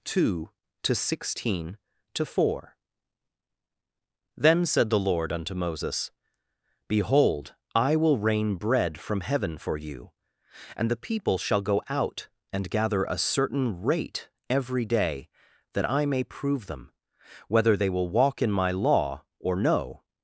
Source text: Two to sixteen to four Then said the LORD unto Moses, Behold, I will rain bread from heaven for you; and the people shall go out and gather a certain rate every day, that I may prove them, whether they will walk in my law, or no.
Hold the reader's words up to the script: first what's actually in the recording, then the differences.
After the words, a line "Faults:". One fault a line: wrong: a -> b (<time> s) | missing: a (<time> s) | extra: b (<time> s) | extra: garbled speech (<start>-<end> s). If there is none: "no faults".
Two to sixteen to four Then said the LORD unto Moses, Behold, I will rain bread from heaven for you; and the people shall go out and gather a certain rate every day, that I may prove them, whether they will walk in my law, or no.
Faults:
no faults